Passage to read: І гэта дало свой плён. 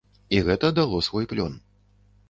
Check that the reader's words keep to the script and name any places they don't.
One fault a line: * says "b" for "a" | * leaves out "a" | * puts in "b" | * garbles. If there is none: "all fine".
all fine